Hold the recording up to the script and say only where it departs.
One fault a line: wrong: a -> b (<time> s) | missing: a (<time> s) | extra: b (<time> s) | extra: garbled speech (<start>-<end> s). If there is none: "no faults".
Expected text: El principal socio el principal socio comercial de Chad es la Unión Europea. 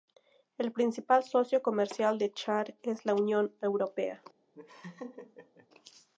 missing: el principal socio (1.6 s)